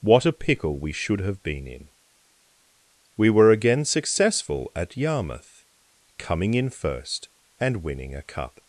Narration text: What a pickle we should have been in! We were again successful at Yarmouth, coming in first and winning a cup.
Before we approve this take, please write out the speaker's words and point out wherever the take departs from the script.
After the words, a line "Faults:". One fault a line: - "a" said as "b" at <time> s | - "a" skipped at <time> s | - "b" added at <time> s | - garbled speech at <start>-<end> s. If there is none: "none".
What a pickle we should have been in! We were again successful at Yarmouth, coming in first and winning a cup.
Faults:
none